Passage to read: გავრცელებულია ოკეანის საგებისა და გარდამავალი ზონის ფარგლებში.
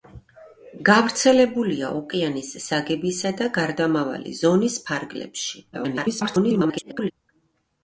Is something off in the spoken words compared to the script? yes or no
yes